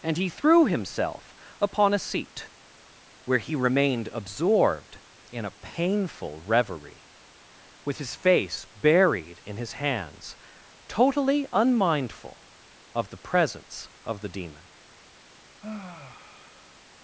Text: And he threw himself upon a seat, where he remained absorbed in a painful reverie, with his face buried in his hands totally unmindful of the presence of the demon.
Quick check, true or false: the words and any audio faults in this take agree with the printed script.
false